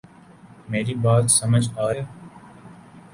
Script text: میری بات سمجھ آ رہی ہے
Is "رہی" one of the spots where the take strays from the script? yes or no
yes